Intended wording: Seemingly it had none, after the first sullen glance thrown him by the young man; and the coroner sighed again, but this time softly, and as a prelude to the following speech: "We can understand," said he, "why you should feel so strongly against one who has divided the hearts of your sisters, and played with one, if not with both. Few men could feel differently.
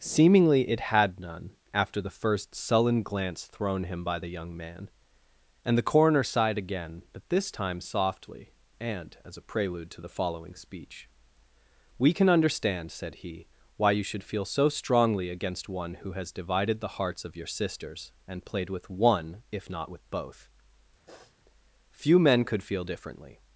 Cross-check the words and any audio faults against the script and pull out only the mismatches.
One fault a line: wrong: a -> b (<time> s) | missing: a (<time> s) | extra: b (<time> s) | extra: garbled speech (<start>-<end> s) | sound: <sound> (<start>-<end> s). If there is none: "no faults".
sound: sniff (21.1-21.4 s)